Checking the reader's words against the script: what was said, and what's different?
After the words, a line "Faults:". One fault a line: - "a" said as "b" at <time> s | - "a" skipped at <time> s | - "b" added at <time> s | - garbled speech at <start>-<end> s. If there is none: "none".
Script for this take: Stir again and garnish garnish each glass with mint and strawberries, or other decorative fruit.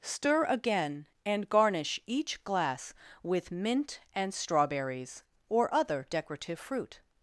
Stir again and garnish each glass with mint and strawberries, or other decorative fruit.
Faults:
- "garnish" skipped at 2.0 s